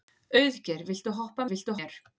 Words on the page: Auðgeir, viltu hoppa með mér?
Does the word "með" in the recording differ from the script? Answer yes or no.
yes